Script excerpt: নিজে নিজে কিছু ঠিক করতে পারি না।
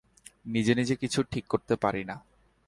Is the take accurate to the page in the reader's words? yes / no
yes